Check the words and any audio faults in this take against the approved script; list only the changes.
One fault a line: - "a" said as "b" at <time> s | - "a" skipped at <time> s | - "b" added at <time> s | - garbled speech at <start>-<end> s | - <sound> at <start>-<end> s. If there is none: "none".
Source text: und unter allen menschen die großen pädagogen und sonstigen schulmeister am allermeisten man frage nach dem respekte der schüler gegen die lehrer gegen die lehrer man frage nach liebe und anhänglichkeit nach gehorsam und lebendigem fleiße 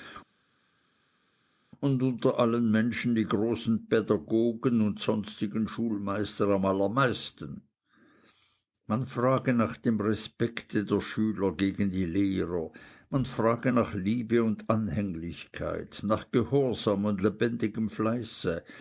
- "gegen die lehrer" skipped at 12.7 s